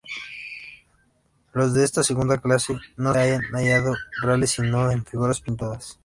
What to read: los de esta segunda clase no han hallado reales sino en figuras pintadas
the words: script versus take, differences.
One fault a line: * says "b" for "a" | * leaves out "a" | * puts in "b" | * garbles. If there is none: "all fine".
all fine